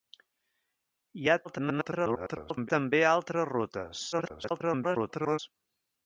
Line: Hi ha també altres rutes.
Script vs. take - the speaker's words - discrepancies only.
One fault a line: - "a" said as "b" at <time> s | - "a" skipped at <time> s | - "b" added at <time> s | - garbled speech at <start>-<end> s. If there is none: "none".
- garbled speech at 1.4-2.7 s
- garbled speech at 4.1-5.4 s